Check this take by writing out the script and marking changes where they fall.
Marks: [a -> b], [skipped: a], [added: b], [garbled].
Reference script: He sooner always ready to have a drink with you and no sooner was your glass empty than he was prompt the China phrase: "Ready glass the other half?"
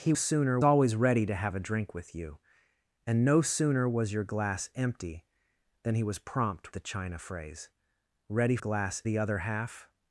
He sooner always ready to have a drink with you and no sooner was your glass empty than he was prompt the China phrase: "Ready glass the other half?"